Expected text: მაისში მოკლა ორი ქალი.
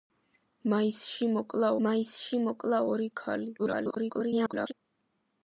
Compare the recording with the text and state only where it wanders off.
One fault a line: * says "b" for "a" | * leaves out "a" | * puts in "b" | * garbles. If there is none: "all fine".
* puts in "მაისში მოკლა"
* garbles